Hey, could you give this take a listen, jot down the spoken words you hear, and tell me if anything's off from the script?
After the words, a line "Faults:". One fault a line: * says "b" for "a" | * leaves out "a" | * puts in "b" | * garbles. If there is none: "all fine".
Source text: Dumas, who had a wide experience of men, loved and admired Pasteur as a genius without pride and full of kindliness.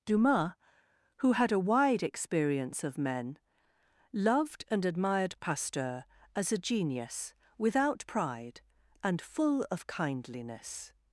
Dumas, who had a wide experience of men, loved and admired Pasteur as a genius without pride and full of kindliness.
Faults:
all fine